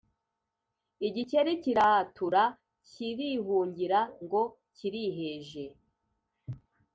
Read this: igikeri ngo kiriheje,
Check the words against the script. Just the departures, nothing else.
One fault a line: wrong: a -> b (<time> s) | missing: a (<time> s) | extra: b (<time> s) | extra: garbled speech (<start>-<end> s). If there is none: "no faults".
extra: kiratura kirihungira (1.6 s)